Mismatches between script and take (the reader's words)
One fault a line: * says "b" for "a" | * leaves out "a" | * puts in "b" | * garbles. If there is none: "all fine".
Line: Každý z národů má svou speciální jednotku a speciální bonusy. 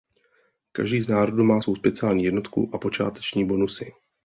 * says "počáteční" for "speciální"